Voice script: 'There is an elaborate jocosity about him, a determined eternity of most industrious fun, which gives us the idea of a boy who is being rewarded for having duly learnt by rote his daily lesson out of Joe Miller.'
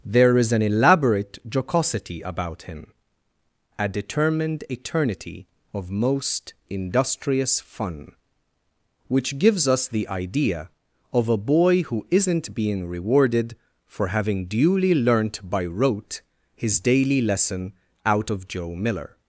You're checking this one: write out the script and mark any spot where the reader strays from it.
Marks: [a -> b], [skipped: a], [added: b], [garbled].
'There is an elaborate jocosity about him, a determined eternity of most industrious fun, which gives us the idea of a boy who [is -> isn't] being rewarded for having duly learnt by rote his daily lesson out of Joe Miller.'